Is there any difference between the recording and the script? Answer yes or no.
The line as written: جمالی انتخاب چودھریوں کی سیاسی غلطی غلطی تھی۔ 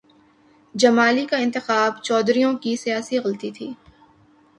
yes